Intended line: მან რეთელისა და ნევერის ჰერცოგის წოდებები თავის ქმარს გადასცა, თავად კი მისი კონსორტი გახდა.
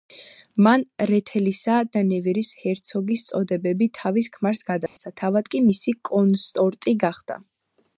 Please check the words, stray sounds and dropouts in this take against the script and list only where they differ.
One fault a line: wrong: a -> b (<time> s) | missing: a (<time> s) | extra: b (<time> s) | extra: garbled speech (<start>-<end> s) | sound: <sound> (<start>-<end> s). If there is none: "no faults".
sound: dropout (4.9-5.0 s)